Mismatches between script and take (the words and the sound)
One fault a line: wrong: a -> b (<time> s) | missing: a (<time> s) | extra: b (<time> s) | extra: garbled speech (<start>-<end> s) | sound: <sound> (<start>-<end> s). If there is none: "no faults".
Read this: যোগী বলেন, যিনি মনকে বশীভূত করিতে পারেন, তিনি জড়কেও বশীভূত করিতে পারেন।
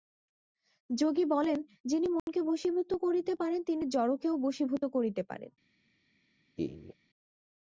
sound: dropout (2.2-2.3 s)
sound: laugh (6.6-6.9 s)